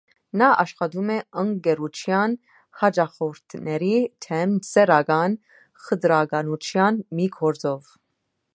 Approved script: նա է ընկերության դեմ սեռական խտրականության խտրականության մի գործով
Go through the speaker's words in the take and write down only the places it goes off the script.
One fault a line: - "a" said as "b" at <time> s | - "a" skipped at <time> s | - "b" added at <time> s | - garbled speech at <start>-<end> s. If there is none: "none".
- "աշխատում" added at 0.6 s
- "հաճախորդների" added at 2.8 s
- "խտրականության" skipped at 7.0 s